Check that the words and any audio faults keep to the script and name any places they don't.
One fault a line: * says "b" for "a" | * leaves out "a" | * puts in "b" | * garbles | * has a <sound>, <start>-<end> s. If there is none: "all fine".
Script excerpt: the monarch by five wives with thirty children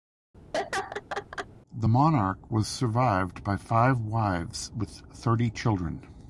* has a laugh, 0.5-1.5 s
* puts in "was survived"